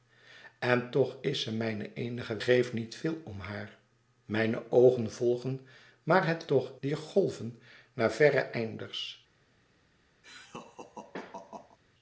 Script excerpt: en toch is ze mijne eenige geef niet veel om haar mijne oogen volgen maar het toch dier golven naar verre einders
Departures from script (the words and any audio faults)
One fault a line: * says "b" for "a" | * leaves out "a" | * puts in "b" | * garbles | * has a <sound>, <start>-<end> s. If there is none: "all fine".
* has a laugh, 10.2-11.8 s